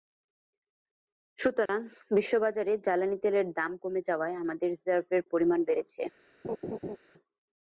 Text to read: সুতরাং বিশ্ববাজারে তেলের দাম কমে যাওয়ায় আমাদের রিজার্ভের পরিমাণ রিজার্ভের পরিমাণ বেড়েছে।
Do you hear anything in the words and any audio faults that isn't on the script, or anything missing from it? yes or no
yes